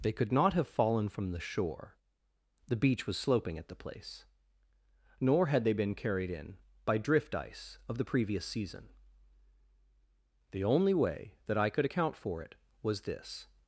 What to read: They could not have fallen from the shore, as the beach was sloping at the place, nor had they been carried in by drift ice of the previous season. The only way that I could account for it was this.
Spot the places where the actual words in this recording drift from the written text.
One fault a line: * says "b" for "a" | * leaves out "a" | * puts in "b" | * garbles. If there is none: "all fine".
* leaves out "as"